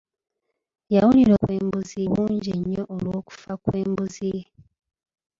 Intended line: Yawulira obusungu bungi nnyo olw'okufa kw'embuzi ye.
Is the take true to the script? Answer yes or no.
no